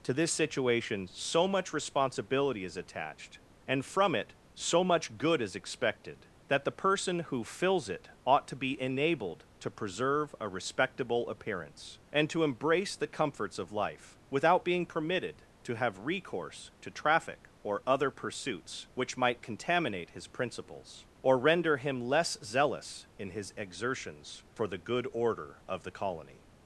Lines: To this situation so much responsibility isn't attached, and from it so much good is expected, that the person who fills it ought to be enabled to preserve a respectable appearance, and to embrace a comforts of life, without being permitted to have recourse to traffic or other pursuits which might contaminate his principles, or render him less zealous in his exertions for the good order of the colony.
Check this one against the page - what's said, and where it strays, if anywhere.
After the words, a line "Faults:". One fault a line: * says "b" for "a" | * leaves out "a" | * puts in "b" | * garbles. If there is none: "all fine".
To this situation so much responsibility is attached, and from it so much good is expected, that the person who fills it ought to be enabled to preserve a respectable appearance, and to embrace the comforts of life, without being permitted to have recourse to traffic or other pursuits which might contaminate his principles, or render him less zealous in his exertions for the good order of the colony.
Faults:
* says "is" for "isn't"
* says "the" for "a"